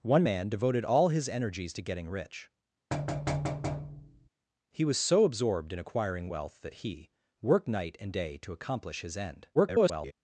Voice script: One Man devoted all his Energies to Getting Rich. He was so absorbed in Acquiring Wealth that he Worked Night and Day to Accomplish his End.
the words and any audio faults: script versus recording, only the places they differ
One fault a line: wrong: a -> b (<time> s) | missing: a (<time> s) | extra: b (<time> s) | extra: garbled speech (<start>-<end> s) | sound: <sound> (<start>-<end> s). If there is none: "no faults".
sound: thud (2.9-4.3 s)
extra: garbled speech (9.5-10.1 s)